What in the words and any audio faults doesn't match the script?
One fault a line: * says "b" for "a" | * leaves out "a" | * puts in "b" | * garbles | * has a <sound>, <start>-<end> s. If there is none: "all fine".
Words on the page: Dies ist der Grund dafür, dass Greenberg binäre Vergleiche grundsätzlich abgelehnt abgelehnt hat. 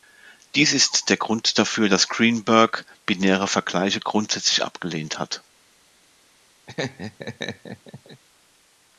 * leaves out "abgelehnt"
* has a laugh, 6.7-8.2 s